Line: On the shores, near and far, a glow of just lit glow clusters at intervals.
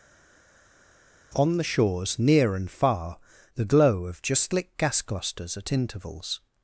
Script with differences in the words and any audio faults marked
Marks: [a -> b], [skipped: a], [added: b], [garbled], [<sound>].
On the shores, near and far, [a -> the] glow of just lit [glow -> gas] clusters at intervals.